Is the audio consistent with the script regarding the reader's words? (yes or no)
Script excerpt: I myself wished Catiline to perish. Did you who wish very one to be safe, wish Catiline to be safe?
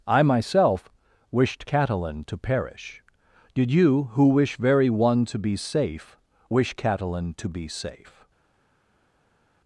yes